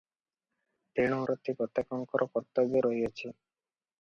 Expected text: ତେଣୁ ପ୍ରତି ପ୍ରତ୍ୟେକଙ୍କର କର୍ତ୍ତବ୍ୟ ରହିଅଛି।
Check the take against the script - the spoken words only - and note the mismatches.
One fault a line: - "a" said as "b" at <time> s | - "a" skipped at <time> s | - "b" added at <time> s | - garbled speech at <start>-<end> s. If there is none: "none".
none